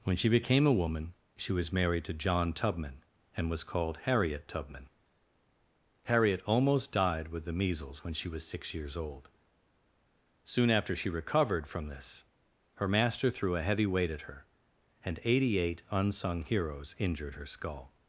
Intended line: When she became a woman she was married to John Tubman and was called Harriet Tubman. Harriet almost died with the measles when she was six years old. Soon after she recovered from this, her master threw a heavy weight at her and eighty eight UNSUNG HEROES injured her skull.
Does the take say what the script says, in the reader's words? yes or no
yes